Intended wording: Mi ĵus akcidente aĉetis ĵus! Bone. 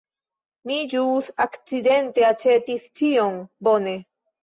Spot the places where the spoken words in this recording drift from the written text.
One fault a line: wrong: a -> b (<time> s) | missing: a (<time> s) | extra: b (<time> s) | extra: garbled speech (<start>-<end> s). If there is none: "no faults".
wrong: ĵus -> ĉion (3.0 s)